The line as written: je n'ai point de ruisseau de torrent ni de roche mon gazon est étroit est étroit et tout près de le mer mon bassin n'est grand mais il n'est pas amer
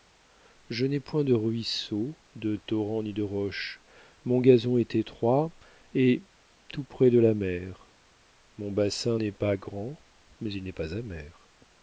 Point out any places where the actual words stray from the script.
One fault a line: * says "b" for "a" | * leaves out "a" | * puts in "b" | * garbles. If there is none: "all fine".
* leaves out "est étroit"
* says "la" for "le"
* puts in "pas"